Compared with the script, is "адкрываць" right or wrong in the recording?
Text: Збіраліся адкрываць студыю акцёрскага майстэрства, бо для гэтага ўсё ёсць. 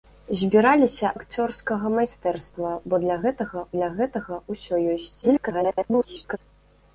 wrong